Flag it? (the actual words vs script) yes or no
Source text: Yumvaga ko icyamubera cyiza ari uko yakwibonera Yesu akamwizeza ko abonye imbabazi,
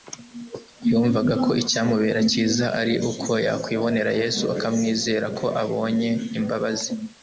no